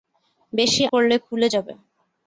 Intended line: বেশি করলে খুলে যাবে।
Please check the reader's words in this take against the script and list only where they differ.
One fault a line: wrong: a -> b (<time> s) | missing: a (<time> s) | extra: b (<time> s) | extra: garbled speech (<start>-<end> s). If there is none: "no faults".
no faults